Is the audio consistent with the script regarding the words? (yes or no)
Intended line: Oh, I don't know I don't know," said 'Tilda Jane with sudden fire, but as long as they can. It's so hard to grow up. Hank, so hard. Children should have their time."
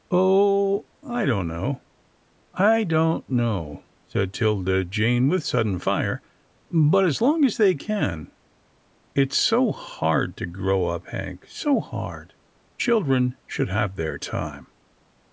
yes